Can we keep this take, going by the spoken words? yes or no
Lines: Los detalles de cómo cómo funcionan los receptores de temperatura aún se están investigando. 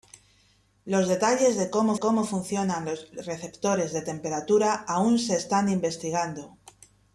yes